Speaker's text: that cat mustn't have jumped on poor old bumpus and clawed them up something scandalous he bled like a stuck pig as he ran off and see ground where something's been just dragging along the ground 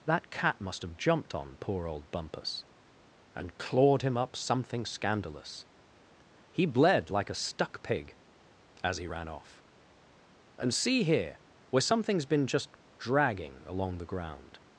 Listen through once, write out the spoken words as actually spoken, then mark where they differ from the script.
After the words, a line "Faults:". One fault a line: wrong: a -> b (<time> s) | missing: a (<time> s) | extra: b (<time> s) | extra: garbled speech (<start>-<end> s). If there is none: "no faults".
that cat must have jumped on poor old bumpus and clawed him up something scandalous he bled like a stuck pig as he ran off and see here where something's been just dragging along the ground
Faults:
wrong: mustn't -> must (0.6 s)
wrong: them -> him (4.0 s)
wrong: ground -> here (11.0 s)